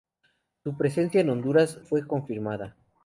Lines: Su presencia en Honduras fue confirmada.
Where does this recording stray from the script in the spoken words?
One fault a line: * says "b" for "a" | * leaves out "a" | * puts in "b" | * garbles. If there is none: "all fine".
all fine